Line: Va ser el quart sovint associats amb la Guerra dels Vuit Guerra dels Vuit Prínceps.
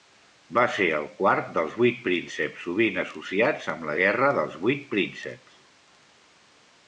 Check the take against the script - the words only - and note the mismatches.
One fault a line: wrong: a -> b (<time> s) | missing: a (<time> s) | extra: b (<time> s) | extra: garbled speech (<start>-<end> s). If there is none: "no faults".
extra: dels vuit prínceps (1.6 s)
missing: Guerra dels Vuit (4.8 s)